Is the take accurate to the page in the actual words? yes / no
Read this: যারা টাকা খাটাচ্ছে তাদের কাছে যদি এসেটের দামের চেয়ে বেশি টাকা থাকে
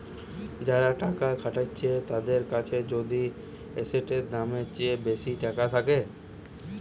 yes